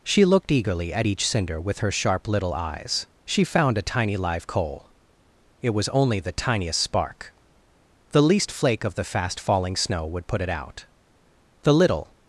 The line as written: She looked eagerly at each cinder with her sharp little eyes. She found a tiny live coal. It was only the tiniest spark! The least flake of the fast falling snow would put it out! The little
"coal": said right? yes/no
yes